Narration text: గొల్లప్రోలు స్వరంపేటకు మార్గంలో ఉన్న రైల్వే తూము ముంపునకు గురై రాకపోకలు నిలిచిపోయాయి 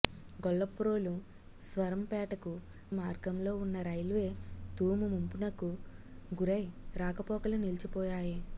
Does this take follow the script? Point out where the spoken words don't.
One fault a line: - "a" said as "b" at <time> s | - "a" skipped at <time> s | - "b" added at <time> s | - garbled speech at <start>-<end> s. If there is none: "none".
none